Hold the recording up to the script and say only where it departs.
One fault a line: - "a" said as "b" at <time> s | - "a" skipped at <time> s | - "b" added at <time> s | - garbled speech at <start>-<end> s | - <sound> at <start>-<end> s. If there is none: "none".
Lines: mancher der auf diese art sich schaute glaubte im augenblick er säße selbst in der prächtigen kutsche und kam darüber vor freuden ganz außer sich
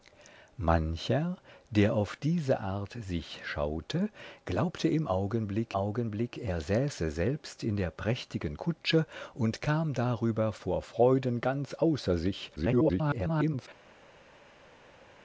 - "augenblick" added at 5.7 s
- garbled speech at 12.6-13.7 s